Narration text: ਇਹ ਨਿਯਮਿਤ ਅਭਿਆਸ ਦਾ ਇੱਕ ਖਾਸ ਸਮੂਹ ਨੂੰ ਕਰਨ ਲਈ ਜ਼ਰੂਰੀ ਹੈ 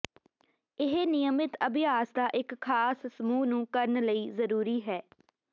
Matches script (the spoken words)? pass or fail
pass